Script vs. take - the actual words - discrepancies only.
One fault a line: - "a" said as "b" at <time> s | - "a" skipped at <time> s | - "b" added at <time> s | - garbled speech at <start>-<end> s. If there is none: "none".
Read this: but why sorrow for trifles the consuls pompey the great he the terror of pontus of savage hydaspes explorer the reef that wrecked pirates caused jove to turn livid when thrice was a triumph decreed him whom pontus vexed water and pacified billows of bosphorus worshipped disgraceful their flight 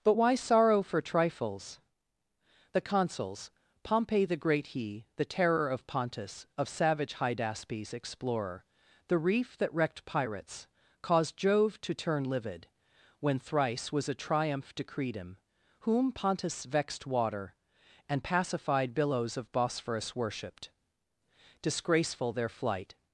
none